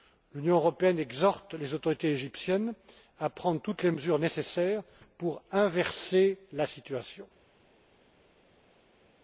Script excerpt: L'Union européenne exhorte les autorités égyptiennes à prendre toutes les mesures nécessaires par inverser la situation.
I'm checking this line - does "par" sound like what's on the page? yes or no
no